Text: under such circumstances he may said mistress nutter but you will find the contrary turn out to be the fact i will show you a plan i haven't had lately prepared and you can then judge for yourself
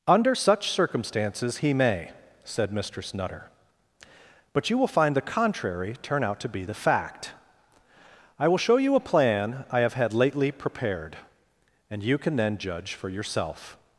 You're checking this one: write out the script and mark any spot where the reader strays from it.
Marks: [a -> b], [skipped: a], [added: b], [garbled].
under such circumstances he may said mistress nutter but you will find the contrary turn out to be the fact i will show you a plan i [haven't -> have] had lately prepared and you can then judge for yourself